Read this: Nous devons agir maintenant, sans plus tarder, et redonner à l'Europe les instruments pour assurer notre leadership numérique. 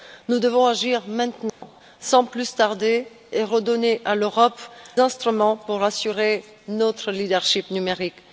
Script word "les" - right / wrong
wrong